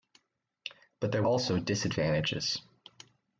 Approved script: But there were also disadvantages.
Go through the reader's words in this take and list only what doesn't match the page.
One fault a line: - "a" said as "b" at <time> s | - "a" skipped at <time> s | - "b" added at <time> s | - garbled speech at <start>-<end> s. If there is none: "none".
- "were" skipped at 1.2 s